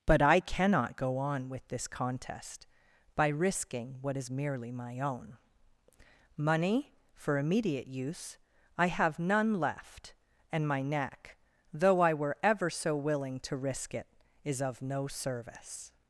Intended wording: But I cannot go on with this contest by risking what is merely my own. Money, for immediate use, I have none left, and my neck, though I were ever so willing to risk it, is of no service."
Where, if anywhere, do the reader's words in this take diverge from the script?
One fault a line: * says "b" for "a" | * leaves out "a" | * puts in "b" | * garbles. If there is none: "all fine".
all fine